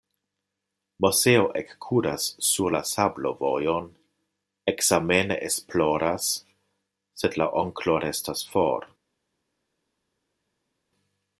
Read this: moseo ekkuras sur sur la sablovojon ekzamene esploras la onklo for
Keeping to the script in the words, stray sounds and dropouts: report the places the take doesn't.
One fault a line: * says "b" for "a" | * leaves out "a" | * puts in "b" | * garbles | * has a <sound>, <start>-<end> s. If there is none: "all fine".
* leaves out "sur"
* puts in "sed"
* puts in "restas"